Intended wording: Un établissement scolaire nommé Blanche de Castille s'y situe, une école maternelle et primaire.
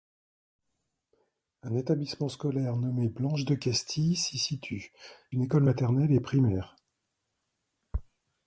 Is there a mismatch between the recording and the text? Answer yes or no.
no